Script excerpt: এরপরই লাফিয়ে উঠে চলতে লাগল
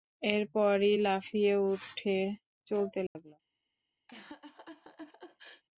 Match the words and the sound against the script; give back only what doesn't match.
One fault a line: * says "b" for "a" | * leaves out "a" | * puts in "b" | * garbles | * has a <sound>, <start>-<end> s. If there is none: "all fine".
* has a dropout, 3.1-3.2 s
* has a laugh, 4.1-5.6 s